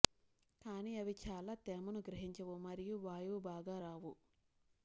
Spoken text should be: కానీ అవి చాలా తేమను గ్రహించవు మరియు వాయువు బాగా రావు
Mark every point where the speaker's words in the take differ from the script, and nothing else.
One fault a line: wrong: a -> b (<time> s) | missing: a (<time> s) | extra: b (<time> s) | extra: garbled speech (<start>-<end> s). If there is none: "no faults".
no faults